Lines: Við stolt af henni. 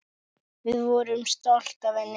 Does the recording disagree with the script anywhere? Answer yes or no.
yes